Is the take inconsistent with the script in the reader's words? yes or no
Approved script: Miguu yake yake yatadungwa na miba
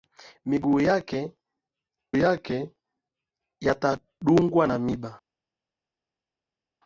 no